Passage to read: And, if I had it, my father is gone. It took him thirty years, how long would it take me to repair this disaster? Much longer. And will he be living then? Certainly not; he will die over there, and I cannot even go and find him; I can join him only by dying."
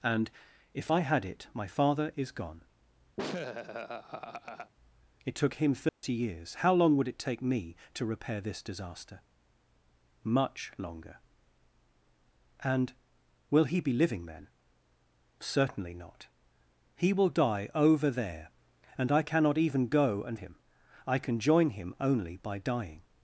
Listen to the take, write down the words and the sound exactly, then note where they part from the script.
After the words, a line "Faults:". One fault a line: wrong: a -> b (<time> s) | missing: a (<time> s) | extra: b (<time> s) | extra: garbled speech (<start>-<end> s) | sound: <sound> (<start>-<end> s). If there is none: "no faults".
And, if I had it, my father is gone. It took him thirty years, how long would it take me to repair this disaster? Much longer. And will he be living then? Certainly not; he will die over there, and I cannot even go and him; I can join him only by dying."
Faults:
sound: laugh (3.2-4.7 s)
sound: dropout (5.9-6.0 s)
missing: find (20.4 s)